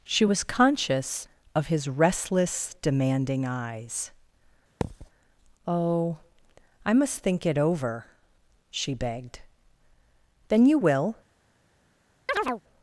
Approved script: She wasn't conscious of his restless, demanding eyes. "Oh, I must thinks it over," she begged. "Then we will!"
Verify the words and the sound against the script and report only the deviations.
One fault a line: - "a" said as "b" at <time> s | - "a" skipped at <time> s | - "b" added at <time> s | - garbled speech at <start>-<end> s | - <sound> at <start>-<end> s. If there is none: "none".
- "wasn't" said as "was" at 0.2 s
- thud at 4.8-5.1 s
- "thinks" said as "think" at 7.2 s
- "we" said as "you" at 10.7 s
- chirp at 12.3-12.6 s